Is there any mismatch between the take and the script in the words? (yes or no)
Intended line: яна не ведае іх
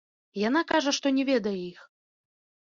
yes